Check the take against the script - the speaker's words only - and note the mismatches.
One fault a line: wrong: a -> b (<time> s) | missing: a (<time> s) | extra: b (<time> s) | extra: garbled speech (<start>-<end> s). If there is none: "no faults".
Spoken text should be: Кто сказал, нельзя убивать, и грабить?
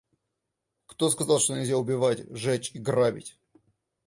extra: что (1.4 s)
extra: жечь (2.4 s)